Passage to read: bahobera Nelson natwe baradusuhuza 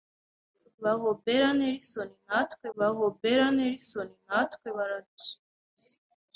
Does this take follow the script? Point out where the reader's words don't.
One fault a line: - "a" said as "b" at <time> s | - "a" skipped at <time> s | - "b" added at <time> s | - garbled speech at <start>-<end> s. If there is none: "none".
- "bahobera Nelson natwe" added at 2.8 s